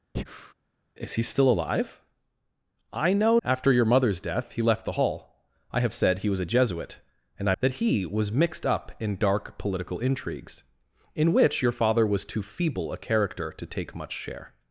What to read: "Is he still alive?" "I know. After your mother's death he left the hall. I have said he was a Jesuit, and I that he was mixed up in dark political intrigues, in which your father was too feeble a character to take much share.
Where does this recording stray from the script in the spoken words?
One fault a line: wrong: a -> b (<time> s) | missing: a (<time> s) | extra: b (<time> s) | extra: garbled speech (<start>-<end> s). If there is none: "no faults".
no faults